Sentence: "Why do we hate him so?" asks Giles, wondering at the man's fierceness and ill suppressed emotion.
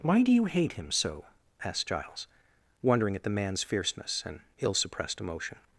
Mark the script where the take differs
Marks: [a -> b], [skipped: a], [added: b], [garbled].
"Why do [we -> you] hate him so?" [asks -> asked] Giles, wondering at the man's fierceness and ill suppressed emotion.